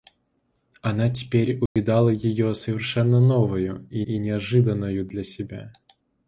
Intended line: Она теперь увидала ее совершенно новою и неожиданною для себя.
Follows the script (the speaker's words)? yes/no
no